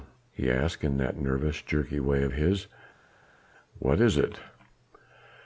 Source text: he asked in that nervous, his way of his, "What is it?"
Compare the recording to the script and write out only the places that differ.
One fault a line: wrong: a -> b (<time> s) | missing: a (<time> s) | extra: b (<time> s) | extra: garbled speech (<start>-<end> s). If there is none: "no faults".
wrong: his -> jerky (1.6 s)